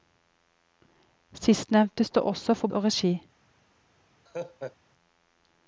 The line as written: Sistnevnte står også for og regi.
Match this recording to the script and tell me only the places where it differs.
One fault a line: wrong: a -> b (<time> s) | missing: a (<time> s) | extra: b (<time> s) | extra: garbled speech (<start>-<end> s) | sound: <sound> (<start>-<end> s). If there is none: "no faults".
sound: laugh (4.3-4.8 s)